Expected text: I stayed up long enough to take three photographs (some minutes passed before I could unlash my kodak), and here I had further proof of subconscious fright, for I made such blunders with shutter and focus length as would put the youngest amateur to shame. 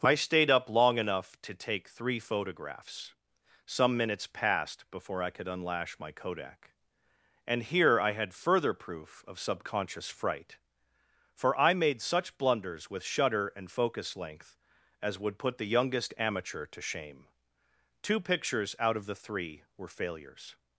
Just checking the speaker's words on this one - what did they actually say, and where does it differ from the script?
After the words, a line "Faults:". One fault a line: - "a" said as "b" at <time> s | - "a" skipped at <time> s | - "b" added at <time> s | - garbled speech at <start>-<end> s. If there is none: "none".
I stayed up long enough to take three photographs (some minutes passed before I could unlash my kodak), and here I had further proof of subconscious fright, for I made such blunders with shutter and focus length as would put the youngest amateur to shame. Two pictures out of the three were failures
Faults:
- "Two pictures out of the three were failures" added at 18.0 s